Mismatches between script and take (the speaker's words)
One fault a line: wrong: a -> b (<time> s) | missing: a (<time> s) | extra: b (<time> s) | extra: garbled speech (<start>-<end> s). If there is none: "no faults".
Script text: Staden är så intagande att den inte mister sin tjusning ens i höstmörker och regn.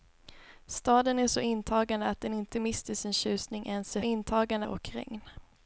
wrong: höstmörker -> intagande (4.0 s)